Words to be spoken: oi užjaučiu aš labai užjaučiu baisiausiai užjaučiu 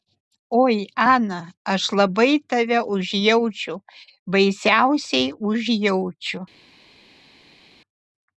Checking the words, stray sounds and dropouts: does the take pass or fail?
fail